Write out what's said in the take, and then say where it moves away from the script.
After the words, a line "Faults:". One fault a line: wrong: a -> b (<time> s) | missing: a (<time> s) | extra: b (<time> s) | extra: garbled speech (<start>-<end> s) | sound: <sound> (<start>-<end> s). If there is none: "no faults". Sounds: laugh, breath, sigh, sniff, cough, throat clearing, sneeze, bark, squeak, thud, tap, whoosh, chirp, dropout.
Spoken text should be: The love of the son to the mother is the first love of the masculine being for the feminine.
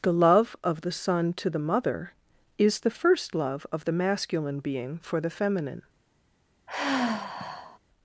The love of the son to the mother is the first love of the masculine being for the feminine.
Faults:
sound: sigh (6.7-7.8 s)